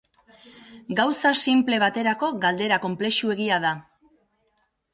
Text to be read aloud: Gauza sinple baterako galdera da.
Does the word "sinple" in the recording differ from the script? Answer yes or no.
no